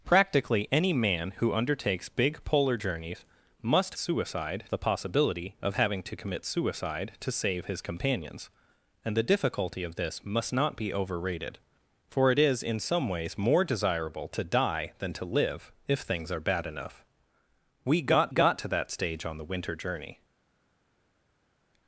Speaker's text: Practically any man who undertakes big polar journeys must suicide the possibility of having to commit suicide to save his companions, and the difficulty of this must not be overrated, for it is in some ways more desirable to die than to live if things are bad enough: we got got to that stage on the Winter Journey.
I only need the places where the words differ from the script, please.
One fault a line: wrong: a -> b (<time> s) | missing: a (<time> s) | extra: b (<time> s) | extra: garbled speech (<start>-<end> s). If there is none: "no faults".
no faults